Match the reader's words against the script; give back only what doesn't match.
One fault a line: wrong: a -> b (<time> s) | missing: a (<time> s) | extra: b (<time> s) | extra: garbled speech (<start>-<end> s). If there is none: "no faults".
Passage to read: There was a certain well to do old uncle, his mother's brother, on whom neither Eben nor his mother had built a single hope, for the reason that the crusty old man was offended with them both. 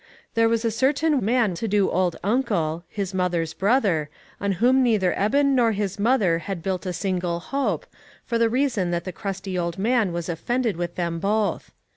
wrong: well -> man (1.2 s)